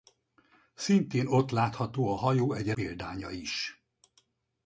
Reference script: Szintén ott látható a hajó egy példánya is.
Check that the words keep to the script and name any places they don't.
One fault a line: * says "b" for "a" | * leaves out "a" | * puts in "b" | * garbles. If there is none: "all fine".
all fine